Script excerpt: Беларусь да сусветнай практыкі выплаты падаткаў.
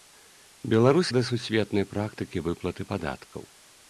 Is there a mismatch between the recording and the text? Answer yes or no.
no